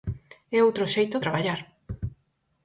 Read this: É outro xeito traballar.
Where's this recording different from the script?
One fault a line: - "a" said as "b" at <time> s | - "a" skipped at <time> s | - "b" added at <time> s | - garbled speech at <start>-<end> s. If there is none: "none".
none